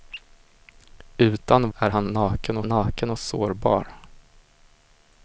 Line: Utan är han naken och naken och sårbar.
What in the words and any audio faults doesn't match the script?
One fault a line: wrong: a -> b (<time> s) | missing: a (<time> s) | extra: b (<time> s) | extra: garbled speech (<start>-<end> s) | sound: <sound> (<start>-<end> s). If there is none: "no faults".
no faults